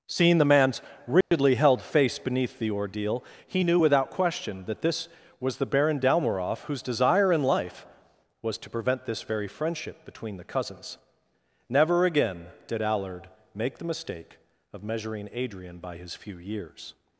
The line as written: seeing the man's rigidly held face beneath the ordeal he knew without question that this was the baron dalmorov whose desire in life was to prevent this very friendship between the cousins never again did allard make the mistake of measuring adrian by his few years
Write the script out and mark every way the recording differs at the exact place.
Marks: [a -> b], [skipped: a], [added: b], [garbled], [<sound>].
seeing the man's rigidly [dropout] held face beneath the ordeal he knew without question that this was the baron dalmorov whose desire in life was to prevent this very friendship between the cousins never again did allard make the mistake of measuring adrian by his few years